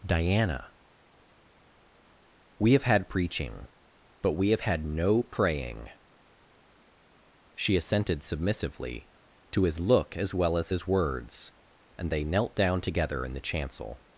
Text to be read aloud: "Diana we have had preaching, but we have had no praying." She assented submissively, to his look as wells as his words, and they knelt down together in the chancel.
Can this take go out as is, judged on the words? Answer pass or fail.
fail